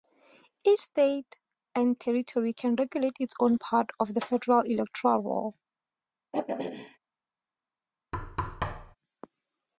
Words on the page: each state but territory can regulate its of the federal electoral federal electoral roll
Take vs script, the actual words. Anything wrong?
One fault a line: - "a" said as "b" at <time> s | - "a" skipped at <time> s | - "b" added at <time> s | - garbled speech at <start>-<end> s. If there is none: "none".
- "but" said as "and" at 1.7 s
- "own part" added at 3.4 s
- "federal electoral" skipped at 5.2 s